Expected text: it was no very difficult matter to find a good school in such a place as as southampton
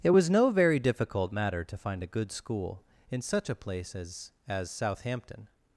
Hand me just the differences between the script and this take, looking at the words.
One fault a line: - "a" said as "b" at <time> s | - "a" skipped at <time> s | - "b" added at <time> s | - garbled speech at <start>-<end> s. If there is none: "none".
none